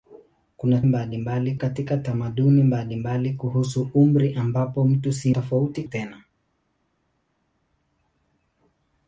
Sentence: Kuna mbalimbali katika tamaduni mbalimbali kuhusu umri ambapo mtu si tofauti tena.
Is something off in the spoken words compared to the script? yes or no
no